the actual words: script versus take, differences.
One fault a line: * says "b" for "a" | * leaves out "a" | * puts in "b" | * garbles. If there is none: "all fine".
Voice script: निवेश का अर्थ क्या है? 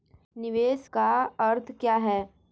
all fine